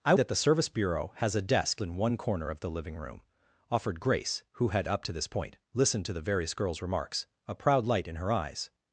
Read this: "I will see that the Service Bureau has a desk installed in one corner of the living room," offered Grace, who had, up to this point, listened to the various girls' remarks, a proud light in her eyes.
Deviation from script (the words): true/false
true